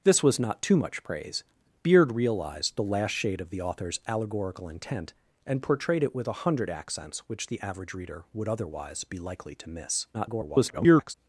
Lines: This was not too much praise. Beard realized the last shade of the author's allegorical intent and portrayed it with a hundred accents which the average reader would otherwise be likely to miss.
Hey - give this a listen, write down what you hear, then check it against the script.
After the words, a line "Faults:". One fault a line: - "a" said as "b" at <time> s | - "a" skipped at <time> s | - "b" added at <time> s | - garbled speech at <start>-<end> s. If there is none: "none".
This was not too much praise. Beard realized the last shade of the author's allegorical intent and portrayed it with a hundred accents which the average reader would otherwise be likely to miss. [garbled]
Faults:
- garbled speech at 10.1-11.1 s